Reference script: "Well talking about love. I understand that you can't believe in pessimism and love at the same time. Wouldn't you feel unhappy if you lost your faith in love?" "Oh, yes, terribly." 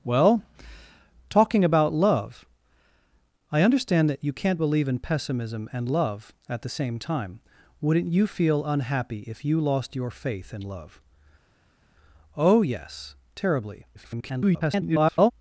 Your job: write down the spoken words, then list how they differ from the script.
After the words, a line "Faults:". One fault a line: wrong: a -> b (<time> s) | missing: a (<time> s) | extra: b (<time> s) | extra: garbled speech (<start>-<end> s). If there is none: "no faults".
"Well talking about love. I understand that you can't believe in pessimism and love at the same time. Wouldn't you feel unhappy if you lost your faith in love?" "Oh, yes, terribly." [garbled]
Faults:
extra: garbled speech (13.9-15.3 s)